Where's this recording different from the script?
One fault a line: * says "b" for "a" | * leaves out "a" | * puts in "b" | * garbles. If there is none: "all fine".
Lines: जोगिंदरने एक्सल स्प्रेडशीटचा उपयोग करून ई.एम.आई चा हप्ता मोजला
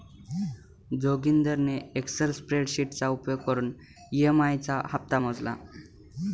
all fine